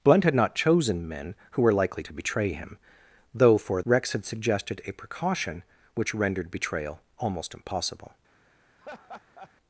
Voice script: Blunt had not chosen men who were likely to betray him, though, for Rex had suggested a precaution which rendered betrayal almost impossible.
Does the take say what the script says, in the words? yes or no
yes